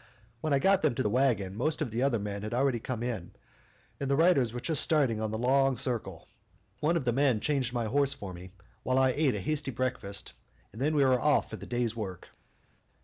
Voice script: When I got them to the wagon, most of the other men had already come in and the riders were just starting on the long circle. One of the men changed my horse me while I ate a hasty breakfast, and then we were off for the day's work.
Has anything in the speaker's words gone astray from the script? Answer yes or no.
yes